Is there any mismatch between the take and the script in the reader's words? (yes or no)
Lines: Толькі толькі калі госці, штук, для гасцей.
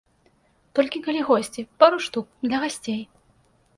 yes